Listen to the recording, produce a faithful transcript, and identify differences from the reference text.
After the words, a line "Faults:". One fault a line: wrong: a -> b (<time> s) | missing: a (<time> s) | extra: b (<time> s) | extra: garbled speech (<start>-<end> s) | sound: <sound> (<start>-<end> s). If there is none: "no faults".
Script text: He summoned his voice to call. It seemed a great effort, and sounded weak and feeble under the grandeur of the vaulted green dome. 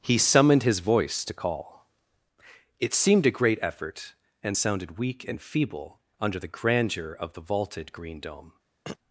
He summoned his voice to call. It seemed a great effort, and sounded weak and feeble under the grandeur of the vaulted green dome.
Faults:
sound: throat clearing (8.9-9.0 s)